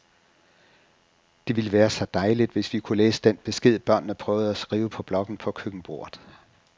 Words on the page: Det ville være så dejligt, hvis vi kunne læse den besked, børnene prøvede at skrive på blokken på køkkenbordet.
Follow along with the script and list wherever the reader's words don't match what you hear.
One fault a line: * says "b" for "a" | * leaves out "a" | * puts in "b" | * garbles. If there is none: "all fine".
all fine